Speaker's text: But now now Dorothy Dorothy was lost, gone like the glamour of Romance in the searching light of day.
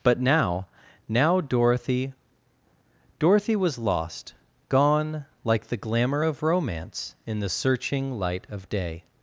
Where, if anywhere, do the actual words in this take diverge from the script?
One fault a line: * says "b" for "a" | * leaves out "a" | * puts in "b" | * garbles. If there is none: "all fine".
all fine